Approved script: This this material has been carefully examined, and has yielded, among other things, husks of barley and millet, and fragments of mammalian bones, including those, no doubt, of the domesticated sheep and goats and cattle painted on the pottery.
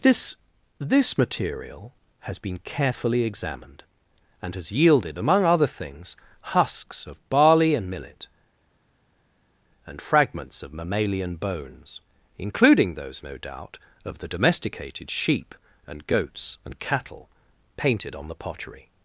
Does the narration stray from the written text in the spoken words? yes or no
no